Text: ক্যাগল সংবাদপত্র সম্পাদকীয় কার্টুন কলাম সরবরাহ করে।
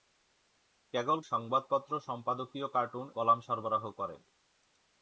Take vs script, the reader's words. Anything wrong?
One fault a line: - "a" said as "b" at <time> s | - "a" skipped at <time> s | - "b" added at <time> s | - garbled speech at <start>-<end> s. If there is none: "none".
none